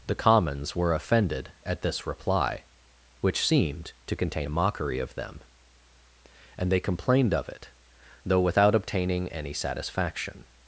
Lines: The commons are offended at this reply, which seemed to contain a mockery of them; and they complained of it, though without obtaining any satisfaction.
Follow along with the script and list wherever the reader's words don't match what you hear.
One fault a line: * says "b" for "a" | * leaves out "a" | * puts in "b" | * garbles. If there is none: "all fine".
* says "were" for "are"